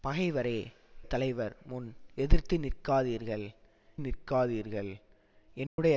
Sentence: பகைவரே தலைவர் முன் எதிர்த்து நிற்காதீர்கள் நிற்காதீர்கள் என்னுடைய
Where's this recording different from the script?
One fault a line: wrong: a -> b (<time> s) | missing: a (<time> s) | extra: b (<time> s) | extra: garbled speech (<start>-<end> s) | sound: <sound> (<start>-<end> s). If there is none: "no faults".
sound: dropout (5.7-5.8 s)